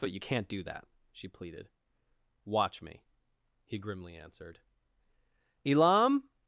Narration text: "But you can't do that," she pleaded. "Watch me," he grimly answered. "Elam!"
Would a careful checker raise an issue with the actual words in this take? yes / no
no